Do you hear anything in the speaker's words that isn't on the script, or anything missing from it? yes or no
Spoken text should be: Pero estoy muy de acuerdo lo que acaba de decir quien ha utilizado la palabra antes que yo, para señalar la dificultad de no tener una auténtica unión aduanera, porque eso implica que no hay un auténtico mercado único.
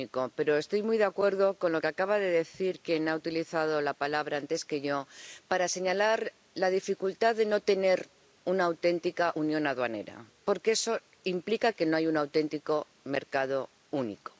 yes